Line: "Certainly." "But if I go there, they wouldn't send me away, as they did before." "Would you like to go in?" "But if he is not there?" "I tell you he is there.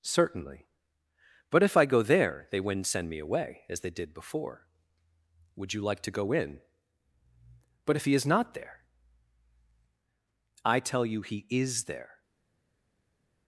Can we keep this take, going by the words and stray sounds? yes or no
yes